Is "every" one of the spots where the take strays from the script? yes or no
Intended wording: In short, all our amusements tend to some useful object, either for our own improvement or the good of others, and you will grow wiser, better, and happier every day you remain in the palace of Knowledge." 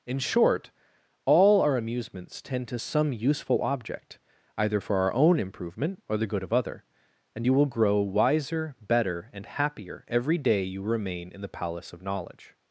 no